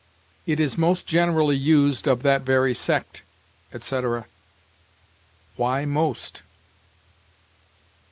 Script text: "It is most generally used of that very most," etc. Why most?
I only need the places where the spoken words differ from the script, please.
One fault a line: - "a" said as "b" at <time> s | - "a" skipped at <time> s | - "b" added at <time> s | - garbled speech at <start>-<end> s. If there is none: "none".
- "most" said as "sect" at 2.7 s